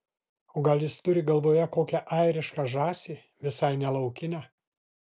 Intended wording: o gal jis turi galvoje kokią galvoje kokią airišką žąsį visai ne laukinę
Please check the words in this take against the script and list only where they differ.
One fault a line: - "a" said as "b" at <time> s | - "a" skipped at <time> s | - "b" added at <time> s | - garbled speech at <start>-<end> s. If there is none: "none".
- "galvoje kokią" skipped at 2.0 s